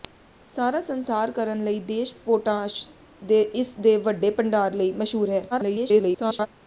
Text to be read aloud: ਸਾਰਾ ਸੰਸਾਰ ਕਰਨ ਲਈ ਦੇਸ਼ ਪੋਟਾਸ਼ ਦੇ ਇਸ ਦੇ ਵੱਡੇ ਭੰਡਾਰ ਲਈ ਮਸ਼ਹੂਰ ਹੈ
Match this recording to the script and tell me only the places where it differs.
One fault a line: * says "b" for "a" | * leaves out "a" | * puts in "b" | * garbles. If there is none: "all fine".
* garbles